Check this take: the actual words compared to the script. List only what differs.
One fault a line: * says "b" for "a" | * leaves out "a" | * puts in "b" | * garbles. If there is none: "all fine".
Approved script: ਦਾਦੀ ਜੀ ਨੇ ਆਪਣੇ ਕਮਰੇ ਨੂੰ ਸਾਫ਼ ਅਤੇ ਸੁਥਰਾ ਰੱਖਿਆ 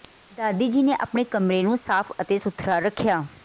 all fine